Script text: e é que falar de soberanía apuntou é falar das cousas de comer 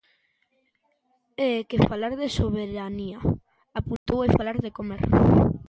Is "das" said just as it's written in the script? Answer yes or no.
no